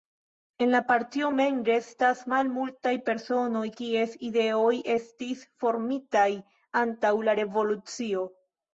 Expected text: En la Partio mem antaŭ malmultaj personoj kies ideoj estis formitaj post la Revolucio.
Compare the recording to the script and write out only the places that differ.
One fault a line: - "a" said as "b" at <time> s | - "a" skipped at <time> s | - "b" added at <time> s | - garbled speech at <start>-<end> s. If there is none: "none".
- "antaŭ" said as "restas" at 1.7 s
- "post" said as "antaŭ" at 6.9 s